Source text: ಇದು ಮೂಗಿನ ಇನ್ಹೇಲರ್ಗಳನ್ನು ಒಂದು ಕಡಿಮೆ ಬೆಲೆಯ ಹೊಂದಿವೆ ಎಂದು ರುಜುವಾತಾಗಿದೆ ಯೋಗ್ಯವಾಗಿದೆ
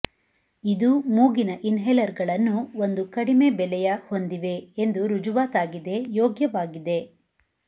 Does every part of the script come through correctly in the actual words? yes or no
yes